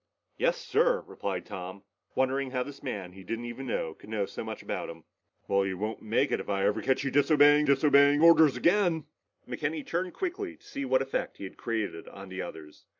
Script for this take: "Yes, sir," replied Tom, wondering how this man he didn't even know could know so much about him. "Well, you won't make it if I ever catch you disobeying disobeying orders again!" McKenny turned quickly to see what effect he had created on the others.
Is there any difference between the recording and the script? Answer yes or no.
no